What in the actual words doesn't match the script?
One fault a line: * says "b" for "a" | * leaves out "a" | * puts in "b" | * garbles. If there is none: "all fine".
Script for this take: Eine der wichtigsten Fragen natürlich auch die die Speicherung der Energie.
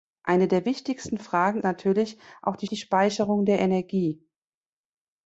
all fine